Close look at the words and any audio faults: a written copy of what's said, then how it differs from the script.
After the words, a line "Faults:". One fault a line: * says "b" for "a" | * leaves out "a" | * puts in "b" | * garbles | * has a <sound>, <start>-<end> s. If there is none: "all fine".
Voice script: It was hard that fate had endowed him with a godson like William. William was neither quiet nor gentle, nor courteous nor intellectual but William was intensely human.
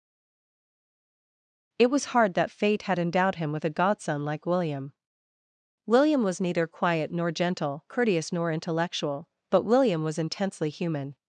It was hard that fate had endowed him with a godson like William. William was neither quiet nor gentle, courteous nor intellectual but William was intensely human.
Faults:
* leaves out "nor"